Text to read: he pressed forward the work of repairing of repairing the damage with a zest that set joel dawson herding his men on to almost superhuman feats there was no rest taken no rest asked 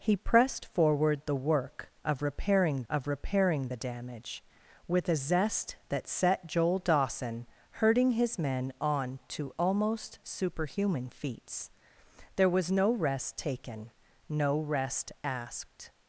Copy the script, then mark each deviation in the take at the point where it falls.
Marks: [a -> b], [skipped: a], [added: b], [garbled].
he pressed forward the work of repairing of repairing the damage with a zest that set joel dawson herding his men on to almost superhuman feats there was no rest taken no rest asked